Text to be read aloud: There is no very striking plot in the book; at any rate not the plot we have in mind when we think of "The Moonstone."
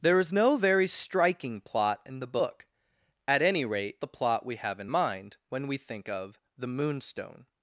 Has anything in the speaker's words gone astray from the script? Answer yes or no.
yes